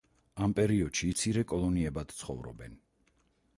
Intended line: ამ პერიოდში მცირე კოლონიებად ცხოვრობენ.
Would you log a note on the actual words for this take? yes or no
no